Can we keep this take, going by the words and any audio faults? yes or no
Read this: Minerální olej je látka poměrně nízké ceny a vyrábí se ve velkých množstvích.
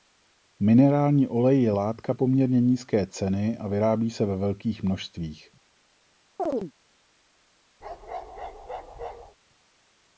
no